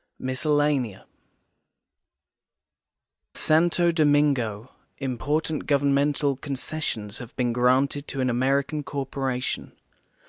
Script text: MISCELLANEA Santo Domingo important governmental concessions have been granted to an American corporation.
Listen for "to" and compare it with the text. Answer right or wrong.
right